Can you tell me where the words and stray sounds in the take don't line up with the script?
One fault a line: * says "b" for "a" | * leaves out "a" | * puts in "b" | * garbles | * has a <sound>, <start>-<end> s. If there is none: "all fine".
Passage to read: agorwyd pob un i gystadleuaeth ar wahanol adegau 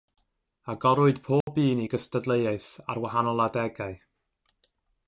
* has a dropout, 1.4-1.5 s